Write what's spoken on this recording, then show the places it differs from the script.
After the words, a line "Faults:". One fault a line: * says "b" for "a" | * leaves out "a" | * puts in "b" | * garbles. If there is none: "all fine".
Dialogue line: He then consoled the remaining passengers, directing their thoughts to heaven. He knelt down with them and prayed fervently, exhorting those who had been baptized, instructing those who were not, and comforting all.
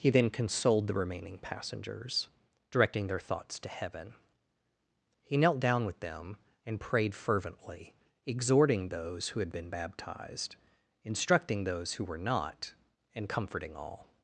He then consoled the remaining passengers, directing their thoughts to heaven. He knelt down with them and prayed fervently, exhorting those who had been baptized, instructing those who were not, and comforting all.
Faults:
all fine